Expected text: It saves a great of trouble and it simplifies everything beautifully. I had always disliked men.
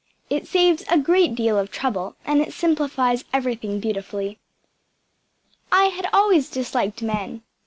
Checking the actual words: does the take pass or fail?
fail